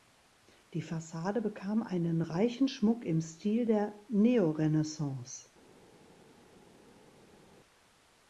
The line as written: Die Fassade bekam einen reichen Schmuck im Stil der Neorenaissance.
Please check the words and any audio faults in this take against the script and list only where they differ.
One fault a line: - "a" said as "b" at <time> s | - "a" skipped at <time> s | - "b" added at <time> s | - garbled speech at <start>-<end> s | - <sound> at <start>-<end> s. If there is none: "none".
none